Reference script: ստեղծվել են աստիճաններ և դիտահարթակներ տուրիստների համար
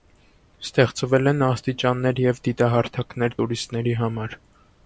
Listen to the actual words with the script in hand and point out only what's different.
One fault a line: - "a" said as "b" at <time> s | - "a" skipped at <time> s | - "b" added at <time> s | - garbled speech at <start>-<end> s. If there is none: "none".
none